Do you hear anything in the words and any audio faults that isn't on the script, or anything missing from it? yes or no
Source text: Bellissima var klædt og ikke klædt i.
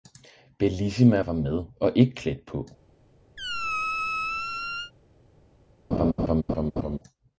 yes